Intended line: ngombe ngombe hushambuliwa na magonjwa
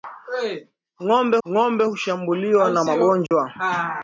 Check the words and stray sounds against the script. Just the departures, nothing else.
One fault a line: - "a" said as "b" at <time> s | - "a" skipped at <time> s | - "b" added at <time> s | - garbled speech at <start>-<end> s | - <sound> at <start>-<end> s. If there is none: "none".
- dropout at 3.3-3.3 s